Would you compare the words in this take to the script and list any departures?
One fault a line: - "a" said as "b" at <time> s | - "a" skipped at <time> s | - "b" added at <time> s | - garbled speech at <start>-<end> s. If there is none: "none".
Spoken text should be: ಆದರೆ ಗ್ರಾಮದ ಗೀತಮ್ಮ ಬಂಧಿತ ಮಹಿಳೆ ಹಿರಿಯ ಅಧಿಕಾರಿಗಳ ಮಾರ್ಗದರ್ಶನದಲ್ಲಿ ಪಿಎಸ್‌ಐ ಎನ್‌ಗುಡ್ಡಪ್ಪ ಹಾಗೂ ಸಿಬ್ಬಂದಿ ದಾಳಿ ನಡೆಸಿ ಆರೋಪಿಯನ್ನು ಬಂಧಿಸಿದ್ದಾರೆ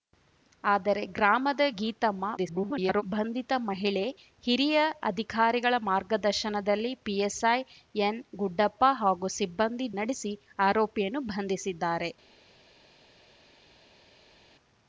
- garbled speech at 2.4-3.0 s
- "ದಾಳಿ" skipped at 9.9 s